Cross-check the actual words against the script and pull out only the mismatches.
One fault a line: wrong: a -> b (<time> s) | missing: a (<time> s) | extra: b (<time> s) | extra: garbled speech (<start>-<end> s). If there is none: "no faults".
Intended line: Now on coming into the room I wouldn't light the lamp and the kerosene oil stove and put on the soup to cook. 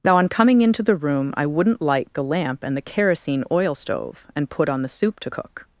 no faults